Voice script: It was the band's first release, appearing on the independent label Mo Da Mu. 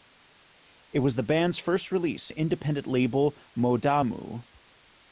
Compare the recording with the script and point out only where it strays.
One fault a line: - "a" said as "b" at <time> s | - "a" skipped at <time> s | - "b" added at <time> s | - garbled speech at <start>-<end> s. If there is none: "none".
- "appearing on" skipped at 2.3 s